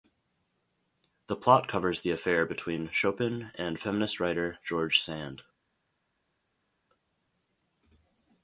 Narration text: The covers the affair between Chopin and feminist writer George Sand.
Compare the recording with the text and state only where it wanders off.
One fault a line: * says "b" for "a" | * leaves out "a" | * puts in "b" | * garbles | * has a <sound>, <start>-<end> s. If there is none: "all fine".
* puts in "plot"